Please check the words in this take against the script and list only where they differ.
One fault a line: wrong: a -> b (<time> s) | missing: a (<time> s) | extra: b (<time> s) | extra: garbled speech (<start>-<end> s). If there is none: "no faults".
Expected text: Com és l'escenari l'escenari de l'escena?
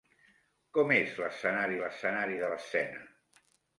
no faults